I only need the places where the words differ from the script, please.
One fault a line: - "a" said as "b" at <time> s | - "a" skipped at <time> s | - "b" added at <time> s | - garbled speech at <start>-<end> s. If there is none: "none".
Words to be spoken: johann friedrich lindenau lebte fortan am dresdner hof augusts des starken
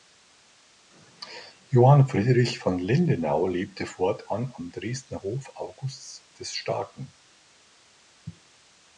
- "von" added at 2.6 s